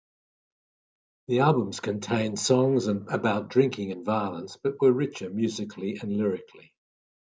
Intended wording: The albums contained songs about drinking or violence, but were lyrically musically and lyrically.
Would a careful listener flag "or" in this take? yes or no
yes